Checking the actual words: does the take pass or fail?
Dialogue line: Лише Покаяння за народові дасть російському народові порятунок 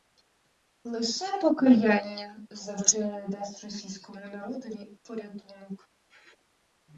fail